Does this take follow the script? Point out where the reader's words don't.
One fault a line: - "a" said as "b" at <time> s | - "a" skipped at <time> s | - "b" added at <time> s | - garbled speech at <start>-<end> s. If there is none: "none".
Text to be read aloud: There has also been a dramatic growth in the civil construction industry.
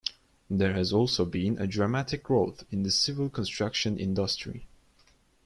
none